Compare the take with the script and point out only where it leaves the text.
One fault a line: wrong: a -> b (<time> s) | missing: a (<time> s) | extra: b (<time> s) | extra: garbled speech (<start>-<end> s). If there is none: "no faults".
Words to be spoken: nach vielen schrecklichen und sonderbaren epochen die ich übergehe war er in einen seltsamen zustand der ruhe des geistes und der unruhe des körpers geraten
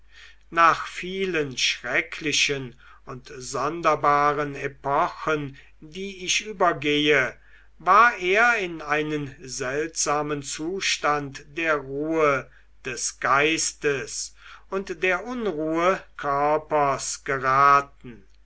missing: des (16.0 s)